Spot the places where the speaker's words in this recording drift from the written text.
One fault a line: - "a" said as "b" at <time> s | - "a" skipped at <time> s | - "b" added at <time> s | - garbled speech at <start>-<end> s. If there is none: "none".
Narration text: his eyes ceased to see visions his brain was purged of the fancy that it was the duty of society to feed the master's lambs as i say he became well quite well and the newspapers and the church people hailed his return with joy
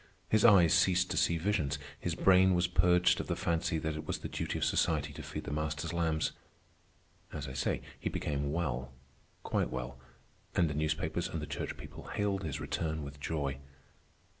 none